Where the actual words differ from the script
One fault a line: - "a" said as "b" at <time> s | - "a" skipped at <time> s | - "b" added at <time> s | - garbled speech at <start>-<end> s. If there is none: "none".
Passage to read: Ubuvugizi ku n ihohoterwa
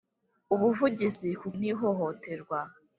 none